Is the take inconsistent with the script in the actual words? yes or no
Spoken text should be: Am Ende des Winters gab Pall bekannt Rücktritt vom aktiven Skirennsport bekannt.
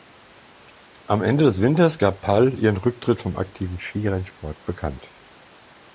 yes